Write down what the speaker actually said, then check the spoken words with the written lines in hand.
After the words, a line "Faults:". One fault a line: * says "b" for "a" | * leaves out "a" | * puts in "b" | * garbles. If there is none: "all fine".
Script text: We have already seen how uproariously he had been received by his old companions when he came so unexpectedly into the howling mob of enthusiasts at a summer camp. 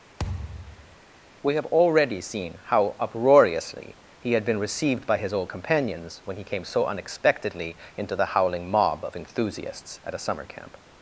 We have already seen how uproariously he had been received by his old companions when he came so unexpectedly into the howling mob of enthusiasts at a summer camp.
Faults:
all fine